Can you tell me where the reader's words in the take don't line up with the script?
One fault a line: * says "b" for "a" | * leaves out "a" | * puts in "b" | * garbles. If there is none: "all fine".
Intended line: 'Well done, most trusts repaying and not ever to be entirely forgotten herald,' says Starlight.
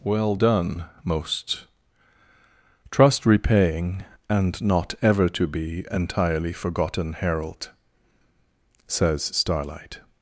* says "trust" for "trusts"